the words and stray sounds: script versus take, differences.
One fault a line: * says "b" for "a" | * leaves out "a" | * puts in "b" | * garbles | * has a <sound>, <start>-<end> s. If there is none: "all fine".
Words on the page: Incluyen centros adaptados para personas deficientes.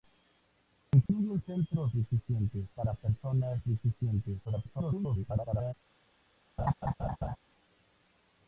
* has a dropout, 1.1-1.1 s
* says "deficientes" for "adaptados"
* garbles
* has a laugh, 6.6-7.4 s